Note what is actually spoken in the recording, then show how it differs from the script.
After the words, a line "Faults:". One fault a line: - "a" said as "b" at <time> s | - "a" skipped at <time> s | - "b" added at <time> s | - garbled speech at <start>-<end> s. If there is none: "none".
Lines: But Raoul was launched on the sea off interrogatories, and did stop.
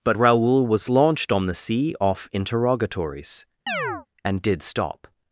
But Raoul was launched on the sea off interrogatories, and did stop.
Faults:
none